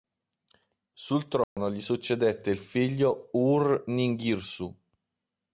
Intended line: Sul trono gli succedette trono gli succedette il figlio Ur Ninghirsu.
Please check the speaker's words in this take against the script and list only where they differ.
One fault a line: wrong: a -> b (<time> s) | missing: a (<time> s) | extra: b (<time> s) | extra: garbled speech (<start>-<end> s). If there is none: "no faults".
missing: trono gli succedette (2.5 s)